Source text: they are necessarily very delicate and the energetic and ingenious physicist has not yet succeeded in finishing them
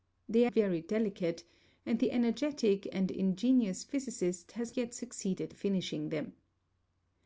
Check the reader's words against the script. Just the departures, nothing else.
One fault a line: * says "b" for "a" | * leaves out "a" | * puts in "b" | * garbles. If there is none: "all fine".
* leaves out "necessarily"
* leaves out "not"
* leaves out "in"